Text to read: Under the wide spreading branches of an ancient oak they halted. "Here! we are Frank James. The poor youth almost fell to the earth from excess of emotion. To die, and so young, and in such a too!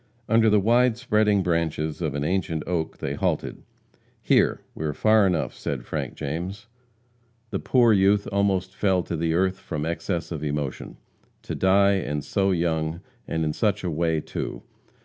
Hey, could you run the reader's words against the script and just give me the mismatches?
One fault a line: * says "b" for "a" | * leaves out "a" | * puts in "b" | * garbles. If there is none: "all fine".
* puts in "far enough said"
* puts in "way"